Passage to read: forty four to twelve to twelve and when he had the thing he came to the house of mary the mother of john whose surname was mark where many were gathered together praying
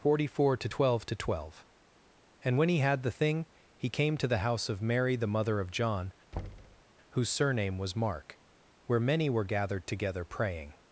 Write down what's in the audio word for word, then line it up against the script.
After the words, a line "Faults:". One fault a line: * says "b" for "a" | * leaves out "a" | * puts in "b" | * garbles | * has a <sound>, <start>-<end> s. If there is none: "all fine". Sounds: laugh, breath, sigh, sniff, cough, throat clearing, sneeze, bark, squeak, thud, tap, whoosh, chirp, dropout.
forty four to twelve to twelve and when he had the thing he came to the house of mary the mother of john whose surname was mark where many were gathered together praying
Faults:
* has a thud, 6.3-6.8 s